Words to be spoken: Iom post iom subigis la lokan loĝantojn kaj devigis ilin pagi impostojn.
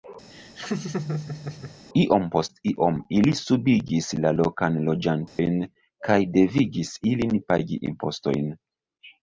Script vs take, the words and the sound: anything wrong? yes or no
yes